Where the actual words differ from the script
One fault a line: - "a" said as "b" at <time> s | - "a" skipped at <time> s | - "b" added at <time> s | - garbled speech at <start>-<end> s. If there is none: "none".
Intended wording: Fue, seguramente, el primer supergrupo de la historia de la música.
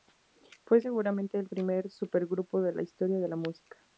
none